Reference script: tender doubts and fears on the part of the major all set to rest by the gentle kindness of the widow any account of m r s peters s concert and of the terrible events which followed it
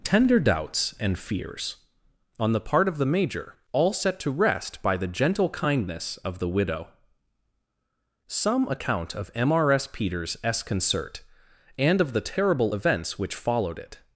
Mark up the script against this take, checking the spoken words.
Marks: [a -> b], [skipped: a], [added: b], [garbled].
tender doubts and fears on the part of the major all set to rest by the gentle kindness of the widow [any -> some] account of m r s peters s concert and of the terrible events which followed it